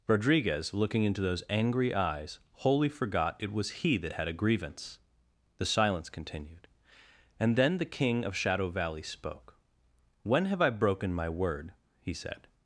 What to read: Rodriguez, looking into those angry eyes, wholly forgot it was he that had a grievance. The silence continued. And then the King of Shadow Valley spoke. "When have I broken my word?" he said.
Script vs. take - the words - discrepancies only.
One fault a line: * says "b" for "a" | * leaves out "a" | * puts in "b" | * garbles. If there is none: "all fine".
all fine